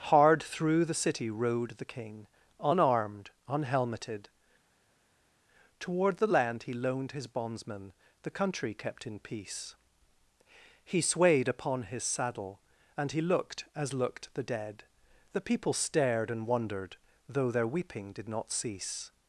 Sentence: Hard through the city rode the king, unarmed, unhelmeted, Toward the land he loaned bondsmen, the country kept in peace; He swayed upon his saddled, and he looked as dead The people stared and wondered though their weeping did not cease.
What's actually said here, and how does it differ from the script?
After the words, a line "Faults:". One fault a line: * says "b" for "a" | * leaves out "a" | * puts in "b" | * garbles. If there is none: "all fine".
Hard through the city rode the king, unarmed, unhelmeted, Toward the land he loaned his bondsmen, the country kept in peace; He swayed upon his saddle, and he looked as looked the dead The people stared and wondered though their weeping did not cease.
Faults:
* puts in "his"
* says "saddle" for "saddled"
* puts in "looked the"